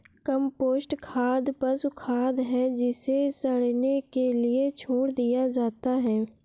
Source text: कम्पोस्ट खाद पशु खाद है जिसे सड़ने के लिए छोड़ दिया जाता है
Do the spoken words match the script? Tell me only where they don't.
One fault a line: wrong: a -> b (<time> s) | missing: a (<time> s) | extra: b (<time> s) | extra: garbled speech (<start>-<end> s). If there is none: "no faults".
no faults